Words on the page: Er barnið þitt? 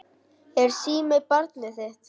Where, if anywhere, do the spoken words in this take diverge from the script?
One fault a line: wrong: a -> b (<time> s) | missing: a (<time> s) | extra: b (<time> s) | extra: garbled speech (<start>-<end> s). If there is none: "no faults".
extra: síminn (0.8 s)